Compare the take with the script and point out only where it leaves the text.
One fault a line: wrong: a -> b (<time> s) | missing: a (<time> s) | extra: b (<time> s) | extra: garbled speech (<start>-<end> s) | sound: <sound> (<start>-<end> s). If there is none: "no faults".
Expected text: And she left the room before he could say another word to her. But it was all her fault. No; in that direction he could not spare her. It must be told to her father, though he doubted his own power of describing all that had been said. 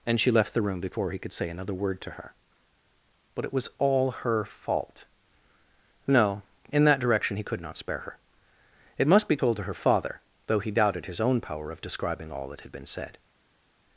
no faults